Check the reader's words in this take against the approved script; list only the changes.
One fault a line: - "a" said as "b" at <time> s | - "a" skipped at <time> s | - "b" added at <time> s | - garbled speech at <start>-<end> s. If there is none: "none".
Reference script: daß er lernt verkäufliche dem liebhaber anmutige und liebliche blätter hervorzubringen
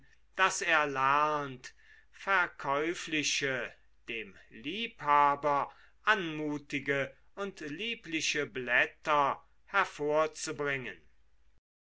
none